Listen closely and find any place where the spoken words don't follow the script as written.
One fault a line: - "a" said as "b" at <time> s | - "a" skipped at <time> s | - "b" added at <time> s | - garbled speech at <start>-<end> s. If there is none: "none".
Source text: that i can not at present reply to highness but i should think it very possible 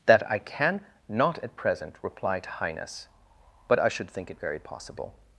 none